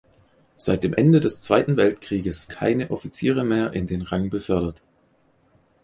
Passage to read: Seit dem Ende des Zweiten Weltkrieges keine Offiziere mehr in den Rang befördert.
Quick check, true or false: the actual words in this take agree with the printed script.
true